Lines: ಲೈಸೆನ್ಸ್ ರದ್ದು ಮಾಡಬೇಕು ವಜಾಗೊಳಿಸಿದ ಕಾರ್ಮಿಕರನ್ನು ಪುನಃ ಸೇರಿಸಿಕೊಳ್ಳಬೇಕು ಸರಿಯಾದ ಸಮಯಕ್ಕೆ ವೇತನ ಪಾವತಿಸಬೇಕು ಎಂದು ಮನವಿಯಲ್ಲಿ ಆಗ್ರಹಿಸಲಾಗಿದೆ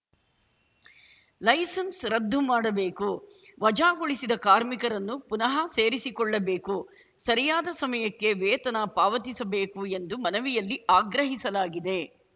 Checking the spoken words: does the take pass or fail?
pass